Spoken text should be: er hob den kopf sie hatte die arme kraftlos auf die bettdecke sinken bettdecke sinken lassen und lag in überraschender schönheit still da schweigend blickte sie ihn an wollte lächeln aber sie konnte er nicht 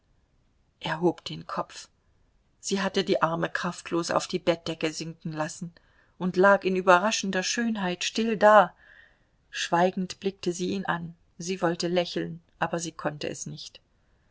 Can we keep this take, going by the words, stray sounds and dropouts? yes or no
no